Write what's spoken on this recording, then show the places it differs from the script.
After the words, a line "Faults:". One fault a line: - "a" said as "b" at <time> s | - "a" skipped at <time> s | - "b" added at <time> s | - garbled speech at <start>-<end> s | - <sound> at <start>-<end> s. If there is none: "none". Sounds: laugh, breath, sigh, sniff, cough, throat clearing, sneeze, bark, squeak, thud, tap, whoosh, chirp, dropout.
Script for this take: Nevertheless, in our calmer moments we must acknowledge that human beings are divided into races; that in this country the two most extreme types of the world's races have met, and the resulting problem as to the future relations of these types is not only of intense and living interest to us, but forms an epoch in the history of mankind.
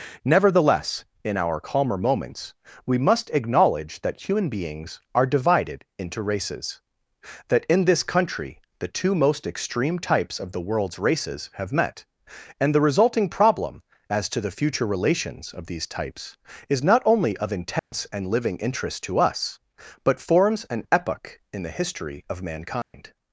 Nevertheless, in our calmer moments we must acknowledge that human beings are divided into races; that in this country the two most extreme types of the world's races have met, and the resulting problem as to the future relations of these types is not only of intense and living interest to us, but forms an epoch in the history of mankind.
Faults:
- dropout at 17.8-17.9 s
- dropout at 22.8-22.9 s